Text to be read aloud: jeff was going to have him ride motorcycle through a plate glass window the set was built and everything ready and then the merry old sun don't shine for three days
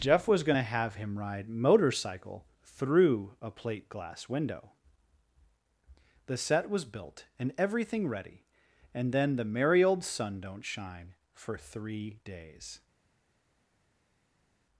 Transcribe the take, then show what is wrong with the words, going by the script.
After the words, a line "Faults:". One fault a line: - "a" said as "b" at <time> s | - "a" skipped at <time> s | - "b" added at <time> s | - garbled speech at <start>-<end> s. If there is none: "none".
jeff was going to have him ride motorcycle through a plate glass window the set was built and everything ready and then the merry old sun don't shine for three days
Faults:
none